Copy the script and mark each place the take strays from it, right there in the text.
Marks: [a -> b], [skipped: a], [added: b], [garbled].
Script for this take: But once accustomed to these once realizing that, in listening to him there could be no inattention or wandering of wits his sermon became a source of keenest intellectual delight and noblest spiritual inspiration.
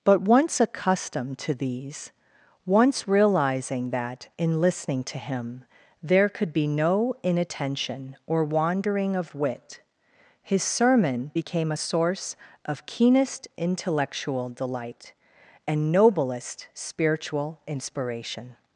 But once accustomed to these once realizing that, in listening to him there could be no inattention or wandering of [wits -> wit] his sermon became a source of keenest intellectual delight and noblest spiritual inspiration.